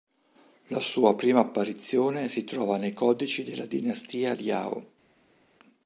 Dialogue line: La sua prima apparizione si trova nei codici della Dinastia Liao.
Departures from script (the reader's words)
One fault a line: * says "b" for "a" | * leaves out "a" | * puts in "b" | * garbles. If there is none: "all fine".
all fine